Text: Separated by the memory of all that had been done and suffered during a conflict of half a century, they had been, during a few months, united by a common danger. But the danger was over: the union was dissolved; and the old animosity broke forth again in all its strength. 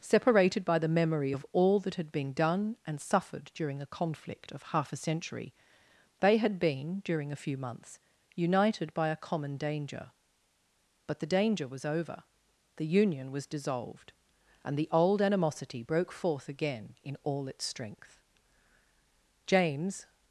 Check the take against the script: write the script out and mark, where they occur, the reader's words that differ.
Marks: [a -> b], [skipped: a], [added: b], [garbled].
Separated by the memory of all that had been done and suffered during a conflict of half a century, they had been, during a few months, united by a common danger. But the danger was over: the union was dissolved; and the old animosity broke forth again in all its strength. [added: James]